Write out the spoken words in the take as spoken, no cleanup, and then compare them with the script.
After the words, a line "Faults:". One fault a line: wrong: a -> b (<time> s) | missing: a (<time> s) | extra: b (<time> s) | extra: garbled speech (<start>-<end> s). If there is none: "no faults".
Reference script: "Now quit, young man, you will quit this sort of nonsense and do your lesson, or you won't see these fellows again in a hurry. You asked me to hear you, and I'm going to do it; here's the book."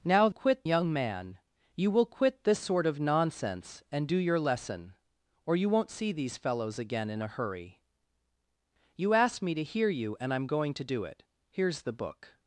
"Now quit, young man, you will quit this sort of nonsense and do your lesson, or you won't see these fellows again in a hurry. You asked me to hear you, and I'm going to do it; here's the book."
Faults:
no faults